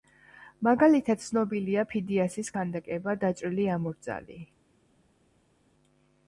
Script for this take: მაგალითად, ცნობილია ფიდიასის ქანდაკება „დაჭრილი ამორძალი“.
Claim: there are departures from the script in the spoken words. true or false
false